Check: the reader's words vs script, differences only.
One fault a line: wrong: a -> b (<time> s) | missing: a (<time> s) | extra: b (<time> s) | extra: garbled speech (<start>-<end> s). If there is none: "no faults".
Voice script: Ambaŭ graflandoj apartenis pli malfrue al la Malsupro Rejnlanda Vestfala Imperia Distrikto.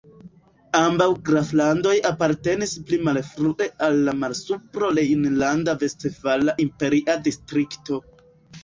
no faults